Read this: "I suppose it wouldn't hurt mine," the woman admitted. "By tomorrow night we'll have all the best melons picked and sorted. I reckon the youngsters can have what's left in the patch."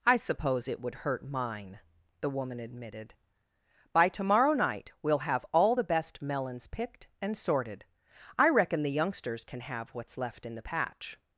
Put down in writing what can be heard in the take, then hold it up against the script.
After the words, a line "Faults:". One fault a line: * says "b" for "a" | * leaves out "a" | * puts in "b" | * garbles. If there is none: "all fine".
"I suppose it would hurt mine," the woman admitted. "By tomorrow night we'll have all the best melons picked and sorted. I reckon the youngsters can have what's left in the patch."
Faults:
* says "would" for "wouldn't"